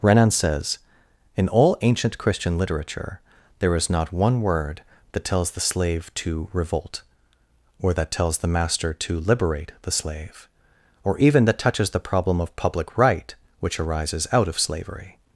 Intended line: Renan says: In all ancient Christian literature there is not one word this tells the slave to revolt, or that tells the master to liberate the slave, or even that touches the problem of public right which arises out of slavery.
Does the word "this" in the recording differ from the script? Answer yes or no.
yes